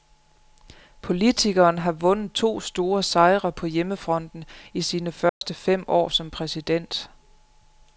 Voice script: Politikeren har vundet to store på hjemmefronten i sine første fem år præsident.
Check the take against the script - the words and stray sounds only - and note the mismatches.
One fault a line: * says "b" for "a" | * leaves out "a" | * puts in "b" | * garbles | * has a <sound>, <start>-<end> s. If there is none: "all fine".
* puts in "sejre"
* has a dropout, 5.3-5.4 s
* puts in "som"